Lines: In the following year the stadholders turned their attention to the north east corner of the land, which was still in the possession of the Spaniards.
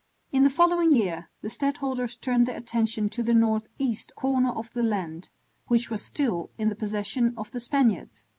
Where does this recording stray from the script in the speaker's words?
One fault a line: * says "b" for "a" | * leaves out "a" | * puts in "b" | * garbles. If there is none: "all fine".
all fine